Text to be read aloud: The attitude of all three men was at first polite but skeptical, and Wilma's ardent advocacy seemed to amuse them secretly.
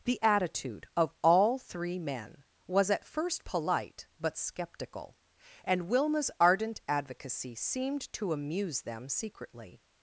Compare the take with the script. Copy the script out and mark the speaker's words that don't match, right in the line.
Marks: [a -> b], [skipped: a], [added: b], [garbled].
The attitude of all three men was at first polite but skeptical, and Wilma's ardent advocacy seemed to amuse them secretly.